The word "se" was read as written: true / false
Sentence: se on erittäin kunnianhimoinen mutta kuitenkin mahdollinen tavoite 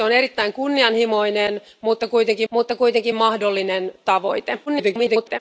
true